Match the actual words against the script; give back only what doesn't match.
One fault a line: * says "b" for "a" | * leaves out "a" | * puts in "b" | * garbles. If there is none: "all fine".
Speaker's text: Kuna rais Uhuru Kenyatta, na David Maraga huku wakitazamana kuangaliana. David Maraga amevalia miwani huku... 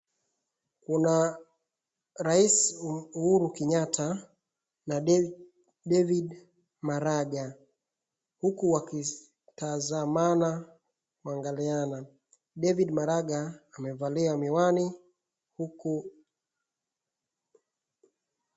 all fine